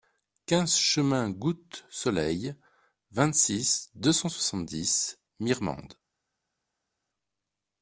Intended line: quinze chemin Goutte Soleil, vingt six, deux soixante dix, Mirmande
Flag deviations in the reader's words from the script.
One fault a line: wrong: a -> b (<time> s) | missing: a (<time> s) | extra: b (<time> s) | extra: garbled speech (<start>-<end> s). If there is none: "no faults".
extra: cent (4.1 s)